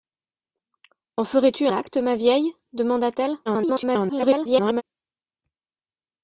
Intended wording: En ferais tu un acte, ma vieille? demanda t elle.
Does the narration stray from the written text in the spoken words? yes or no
yes